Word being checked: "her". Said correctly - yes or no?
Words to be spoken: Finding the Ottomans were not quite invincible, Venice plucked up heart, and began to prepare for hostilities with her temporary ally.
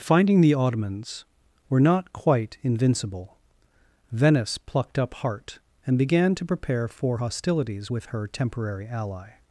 yes